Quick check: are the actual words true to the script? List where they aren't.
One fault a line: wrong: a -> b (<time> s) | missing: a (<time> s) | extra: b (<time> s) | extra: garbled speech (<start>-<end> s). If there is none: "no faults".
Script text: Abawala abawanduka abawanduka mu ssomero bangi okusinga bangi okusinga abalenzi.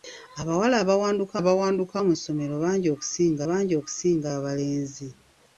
no faults